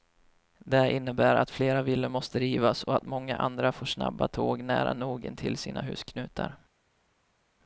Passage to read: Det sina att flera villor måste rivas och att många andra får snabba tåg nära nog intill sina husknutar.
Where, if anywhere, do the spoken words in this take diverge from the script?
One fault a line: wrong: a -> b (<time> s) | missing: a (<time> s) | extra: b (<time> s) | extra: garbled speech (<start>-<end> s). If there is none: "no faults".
wrong: sina -> innebär (0.9 s)